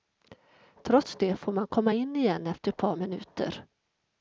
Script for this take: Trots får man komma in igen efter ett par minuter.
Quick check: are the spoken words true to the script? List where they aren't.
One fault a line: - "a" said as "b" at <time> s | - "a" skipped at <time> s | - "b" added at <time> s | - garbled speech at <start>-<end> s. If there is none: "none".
- "det" added at 1.1 s